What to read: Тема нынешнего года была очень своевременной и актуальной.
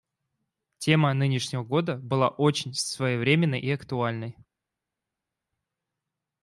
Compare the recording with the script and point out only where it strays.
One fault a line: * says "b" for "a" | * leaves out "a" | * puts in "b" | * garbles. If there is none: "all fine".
all fine